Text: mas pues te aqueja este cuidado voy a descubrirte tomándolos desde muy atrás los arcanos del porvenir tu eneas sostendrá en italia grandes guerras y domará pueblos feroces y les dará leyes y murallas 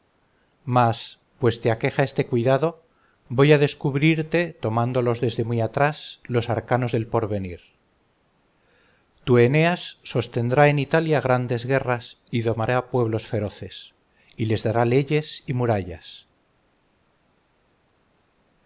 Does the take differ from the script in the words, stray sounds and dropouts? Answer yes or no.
no